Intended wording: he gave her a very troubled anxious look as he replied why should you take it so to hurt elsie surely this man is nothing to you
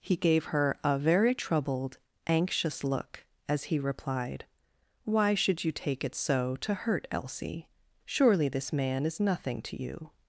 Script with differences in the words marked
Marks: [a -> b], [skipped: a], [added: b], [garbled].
he gave her a very troubled anxious look as he replied why should you take it so to hurt elsie surely this man is nothing to you